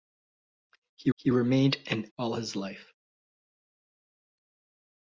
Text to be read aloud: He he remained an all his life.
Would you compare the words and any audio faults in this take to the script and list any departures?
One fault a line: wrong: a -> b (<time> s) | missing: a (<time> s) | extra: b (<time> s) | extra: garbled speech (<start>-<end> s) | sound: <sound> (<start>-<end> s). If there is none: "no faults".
no faults